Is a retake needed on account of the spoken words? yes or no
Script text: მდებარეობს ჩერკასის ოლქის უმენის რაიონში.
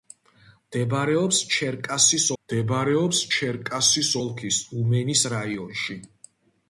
yes